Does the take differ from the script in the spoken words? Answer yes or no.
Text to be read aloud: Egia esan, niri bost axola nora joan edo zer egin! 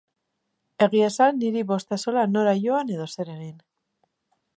no